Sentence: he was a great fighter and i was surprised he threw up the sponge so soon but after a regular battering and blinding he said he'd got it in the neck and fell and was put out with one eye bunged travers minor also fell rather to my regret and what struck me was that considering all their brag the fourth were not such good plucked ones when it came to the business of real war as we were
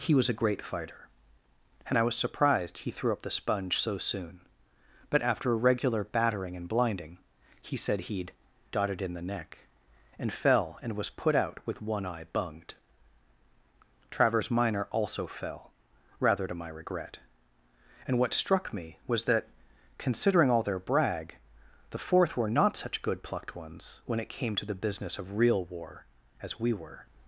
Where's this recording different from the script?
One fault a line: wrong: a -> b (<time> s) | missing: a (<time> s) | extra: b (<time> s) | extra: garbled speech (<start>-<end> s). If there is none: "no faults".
wrong: got it -> dotted (8.7 s)